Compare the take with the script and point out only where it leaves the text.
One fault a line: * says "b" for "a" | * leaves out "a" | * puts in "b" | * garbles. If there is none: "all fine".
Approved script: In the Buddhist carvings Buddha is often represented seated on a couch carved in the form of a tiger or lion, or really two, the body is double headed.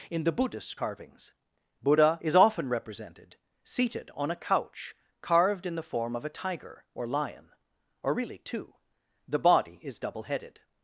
all fine